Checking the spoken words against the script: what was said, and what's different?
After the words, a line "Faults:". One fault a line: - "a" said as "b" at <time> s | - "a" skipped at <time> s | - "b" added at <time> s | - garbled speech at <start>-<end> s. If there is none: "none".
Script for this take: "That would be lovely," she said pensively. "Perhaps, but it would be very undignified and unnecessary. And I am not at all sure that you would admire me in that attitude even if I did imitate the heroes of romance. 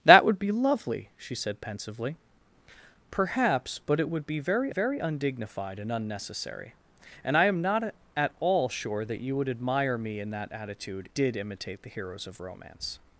"That would be lovely," she said pensively. "Perhaps, but it would be very very undignified and unnecessary. And I am not at all sure that you would admire me in that attitude did imitate the heroes of romance.
Faults:
- "very" added at 4.7 s
- "even if I" skipped at 11.1 s